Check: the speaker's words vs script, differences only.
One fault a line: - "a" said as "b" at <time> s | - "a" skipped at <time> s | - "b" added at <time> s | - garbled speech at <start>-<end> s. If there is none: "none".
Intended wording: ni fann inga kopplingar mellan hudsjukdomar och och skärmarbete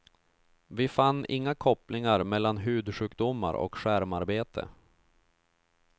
- "ni" said as "vi" at 0.7 s
- "och" skipped at 3.8 s